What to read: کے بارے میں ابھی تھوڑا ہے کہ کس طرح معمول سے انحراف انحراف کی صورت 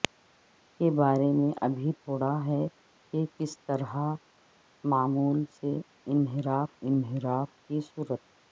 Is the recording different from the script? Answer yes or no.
no